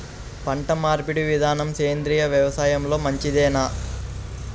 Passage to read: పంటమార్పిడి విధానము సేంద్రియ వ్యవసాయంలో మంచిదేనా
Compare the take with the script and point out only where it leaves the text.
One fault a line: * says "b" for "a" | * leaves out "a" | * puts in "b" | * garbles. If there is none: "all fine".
all fine